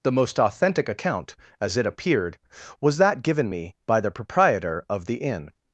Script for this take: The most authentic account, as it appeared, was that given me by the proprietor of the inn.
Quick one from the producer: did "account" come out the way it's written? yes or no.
yes